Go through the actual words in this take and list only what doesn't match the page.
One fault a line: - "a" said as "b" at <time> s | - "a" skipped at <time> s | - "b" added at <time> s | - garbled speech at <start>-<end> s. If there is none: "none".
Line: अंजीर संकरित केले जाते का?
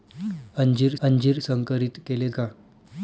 - "अंजीर" added at 1.0 s
- "जाते" skipped at 2.3 s